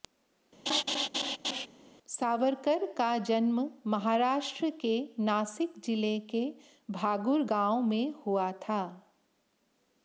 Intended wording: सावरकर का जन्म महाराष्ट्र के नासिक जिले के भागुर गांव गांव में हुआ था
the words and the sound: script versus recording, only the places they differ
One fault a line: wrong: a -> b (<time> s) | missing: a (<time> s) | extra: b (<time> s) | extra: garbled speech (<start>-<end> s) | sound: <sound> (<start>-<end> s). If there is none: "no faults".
sound: laugh (0.7-1.7 s)
missing: गांव (7.8 s)